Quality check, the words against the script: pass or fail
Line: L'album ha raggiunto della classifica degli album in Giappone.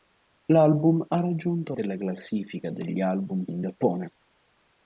pass